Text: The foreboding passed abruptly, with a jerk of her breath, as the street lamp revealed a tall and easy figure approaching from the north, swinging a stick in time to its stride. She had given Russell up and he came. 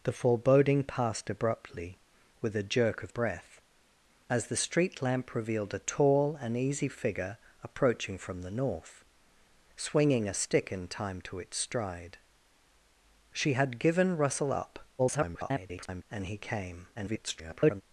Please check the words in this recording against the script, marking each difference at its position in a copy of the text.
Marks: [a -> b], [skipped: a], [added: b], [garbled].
The foreboding passed abruptly, with a jerk of [skipped: her] breath, as the street lamp revealed a tall and easy figure approaching from the north, swinging a stick in time to its stride. She had given Russell up [garbled] and he came. [garbled]